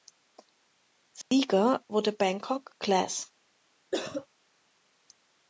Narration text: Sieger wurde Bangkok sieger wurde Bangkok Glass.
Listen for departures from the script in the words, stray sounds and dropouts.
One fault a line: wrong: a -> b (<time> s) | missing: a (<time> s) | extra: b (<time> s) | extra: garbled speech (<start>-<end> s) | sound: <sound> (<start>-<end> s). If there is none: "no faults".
sound: dropout (1.2-1.3 s)
missing: sieger wurde Bangkok (2.7 s)
sound: cough (3.9-4.3 s)